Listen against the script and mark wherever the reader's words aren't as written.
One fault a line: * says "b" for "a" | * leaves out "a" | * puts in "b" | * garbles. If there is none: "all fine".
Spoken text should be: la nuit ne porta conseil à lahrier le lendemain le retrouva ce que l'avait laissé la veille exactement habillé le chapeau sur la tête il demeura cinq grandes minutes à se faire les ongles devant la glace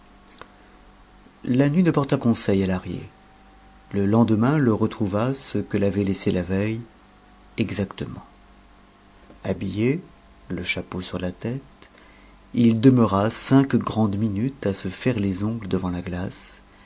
all fine